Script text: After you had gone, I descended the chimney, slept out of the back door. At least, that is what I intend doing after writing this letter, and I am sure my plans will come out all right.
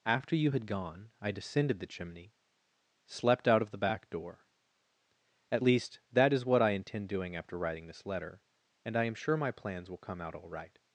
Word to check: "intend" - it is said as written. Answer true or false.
true